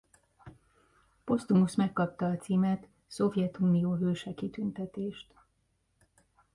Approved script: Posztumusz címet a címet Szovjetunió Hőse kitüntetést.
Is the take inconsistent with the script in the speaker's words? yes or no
yes